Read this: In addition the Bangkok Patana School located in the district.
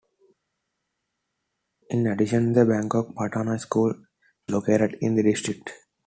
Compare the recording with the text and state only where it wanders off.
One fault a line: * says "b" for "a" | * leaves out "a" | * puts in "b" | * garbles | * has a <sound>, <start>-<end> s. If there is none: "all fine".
all fine